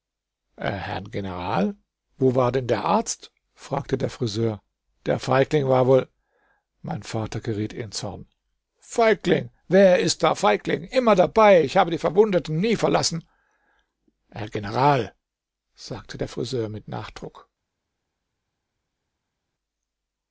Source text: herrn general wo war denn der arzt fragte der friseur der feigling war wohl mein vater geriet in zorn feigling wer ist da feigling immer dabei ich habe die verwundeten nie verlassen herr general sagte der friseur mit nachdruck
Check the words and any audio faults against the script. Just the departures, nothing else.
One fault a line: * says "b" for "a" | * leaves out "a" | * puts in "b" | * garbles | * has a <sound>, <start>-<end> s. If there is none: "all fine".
all fine